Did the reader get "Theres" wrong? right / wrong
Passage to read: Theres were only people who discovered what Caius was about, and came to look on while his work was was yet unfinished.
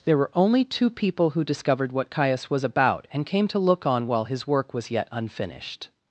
wrong